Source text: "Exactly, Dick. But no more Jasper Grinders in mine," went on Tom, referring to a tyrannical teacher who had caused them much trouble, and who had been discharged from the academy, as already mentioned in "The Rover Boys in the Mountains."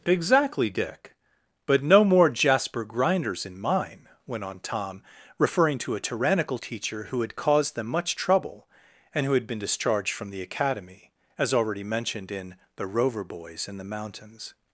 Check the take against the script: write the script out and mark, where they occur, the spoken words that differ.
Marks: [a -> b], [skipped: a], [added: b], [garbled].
"Exactly, Dick. But no more Jasper Grinders in mine," went on Tom, referring to a tyrannical teacher who had caused them much trouble, and who had been discharged from the academy, as already mentioned in "The Rover Boys in the Mountains."